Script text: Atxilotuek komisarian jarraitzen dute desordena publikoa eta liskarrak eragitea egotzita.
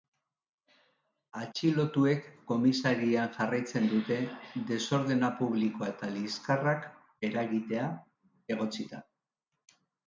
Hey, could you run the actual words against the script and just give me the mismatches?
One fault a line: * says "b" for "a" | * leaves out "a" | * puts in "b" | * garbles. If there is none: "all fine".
all fine